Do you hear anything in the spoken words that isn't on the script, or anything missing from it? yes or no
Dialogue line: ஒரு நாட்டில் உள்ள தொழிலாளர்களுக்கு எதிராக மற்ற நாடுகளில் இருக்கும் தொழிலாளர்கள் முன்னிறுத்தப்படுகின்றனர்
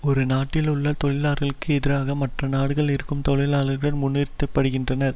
no